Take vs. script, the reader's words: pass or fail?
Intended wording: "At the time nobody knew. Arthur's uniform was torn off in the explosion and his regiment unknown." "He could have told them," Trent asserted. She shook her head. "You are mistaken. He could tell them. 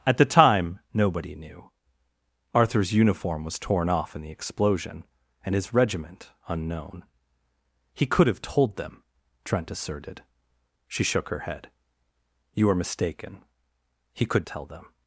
pass